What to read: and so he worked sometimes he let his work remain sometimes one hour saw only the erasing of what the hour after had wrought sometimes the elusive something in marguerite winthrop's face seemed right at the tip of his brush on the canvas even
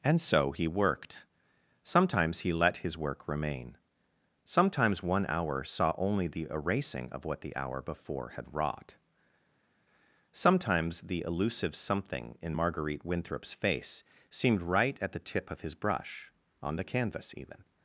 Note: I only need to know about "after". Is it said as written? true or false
false